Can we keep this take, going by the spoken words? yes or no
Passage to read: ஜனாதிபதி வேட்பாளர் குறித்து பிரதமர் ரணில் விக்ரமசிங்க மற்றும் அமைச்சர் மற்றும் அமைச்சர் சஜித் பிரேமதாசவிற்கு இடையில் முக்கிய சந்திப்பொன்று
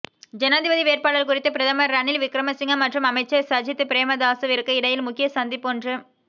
no